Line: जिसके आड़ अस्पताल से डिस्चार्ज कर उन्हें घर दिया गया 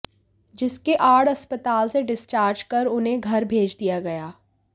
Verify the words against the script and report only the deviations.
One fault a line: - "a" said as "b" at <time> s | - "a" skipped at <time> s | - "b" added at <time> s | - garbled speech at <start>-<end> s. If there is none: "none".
- "भेज" added at 3.4 s